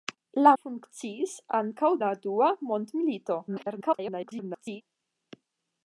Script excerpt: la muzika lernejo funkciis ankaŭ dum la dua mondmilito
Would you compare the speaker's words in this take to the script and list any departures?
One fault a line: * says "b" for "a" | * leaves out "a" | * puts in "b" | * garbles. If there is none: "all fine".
* leaves out "muzika lernejo"
* leaves out "dum"
* garbles